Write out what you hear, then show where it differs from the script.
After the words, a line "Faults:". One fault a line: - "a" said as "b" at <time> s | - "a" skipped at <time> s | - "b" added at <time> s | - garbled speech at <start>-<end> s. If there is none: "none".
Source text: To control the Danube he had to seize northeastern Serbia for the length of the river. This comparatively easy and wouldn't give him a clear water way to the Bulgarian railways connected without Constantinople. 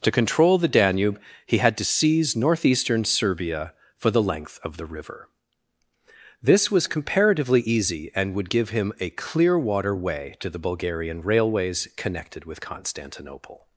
To control the Danube he had to seize northeastern Serbia for the length of the river. This was comparatively easy and would give him a clear water way to the Bulgarian railways connected with Constantinople.
Faults:
- "was" added at 6.7 s
- "wouldn't" said as "would" at 8.3 s
- "without" said as "with" at 12.4 s